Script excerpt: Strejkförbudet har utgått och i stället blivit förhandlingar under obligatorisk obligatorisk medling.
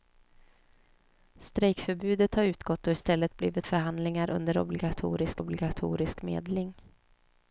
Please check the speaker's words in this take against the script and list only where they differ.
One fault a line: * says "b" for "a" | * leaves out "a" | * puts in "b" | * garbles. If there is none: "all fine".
all fine